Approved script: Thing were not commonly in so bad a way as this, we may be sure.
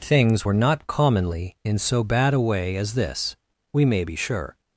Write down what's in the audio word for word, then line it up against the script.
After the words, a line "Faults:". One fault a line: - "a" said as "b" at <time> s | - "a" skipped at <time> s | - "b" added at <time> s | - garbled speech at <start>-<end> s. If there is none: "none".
Things were not commonly in so bad a way as this, we may be sure.
Faults:
- "Thing" said as "Things" at 0.0 s